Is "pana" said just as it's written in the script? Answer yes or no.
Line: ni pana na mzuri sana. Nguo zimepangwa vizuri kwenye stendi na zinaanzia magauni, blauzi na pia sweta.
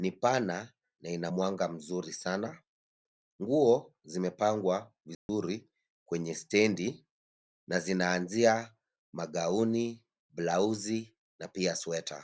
yes